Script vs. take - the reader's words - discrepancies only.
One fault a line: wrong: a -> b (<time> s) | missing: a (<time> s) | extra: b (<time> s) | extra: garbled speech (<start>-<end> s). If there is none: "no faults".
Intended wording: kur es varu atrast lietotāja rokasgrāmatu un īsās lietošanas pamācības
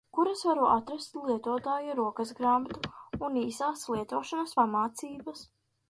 no faults